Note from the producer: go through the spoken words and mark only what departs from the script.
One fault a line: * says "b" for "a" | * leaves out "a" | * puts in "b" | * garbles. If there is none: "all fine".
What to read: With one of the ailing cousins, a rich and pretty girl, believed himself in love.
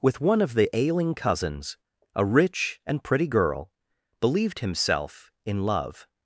all fine